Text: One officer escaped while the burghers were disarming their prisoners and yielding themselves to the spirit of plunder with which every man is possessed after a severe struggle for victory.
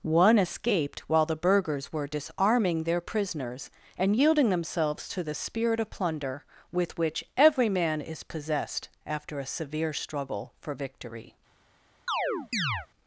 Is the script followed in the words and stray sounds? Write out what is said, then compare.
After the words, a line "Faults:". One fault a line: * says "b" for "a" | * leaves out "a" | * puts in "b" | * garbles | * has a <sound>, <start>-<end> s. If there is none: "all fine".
One escaped while the burghers were disarming their prisoners and yielding themselves to the spirit of plunder with which every man is possessed after a severe struggle for victory.
Faults:
* leaves out "officer"
* has a chirp, 12.1-12.9 s